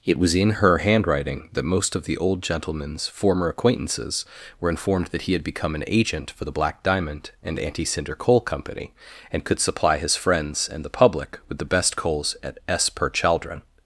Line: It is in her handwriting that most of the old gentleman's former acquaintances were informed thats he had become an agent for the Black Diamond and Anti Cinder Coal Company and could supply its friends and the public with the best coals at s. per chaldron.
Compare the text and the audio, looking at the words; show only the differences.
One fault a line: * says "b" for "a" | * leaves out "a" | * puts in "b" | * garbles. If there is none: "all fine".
* says "was" for "is"
* says "that" for "thats"
* says "his" for "its"